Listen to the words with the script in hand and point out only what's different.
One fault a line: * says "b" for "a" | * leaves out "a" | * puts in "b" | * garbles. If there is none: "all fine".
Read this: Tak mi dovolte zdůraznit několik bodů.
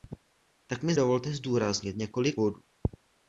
all fine